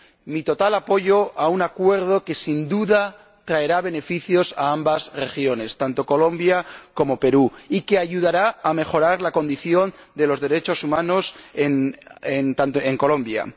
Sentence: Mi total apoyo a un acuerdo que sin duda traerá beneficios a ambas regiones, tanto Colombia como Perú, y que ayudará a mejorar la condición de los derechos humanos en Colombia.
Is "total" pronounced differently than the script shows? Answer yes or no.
no